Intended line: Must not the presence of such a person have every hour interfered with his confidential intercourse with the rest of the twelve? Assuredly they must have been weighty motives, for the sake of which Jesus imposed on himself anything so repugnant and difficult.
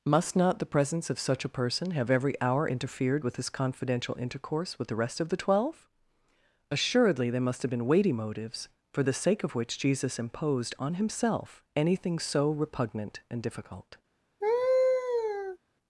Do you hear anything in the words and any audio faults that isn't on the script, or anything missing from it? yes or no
yes